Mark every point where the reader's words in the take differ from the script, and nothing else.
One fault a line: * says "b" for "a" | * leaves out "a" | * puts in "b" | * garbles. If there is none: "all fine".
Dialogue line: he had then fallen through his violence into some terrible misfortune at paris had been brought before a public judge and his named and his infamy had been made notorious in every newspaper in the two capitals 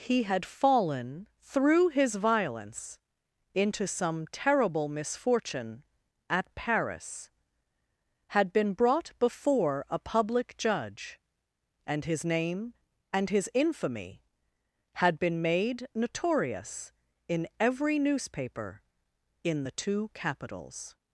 * leaves out "then"
* says "name" for "named"